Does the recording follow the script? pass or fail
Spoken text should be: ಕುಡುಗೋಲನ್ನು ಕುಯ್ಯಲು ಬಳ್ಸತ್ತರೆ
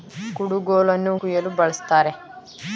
pass